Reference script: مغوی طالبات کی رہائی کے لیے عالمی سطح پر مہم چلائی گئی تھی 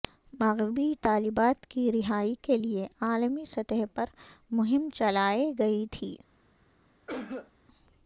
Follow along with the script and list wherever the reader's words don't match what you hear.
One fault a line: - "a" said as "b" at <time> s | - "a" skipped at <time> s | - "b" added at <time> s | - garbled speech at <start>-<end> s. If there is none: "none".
none